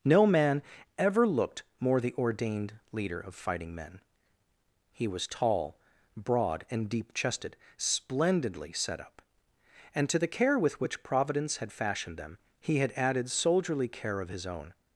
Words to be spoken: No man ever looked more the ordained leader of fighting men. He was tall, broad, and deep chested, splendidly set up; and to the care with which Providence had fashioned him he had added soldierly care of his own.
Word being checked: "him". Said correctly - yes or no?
no